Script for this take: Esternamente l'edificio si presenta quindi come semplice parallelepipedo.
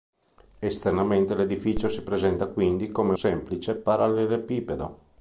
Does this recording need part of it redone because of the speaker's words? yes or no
no